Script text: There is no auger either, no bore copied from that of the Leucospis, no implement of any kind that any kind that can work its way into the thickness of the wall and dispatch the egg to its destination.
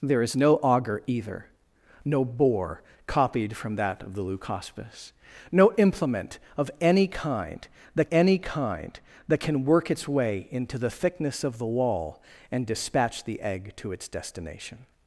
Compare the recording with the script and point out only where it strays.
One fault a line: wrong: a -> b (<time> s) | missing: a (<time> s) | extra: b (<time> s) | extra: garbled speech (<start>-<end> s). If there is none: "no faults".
no faults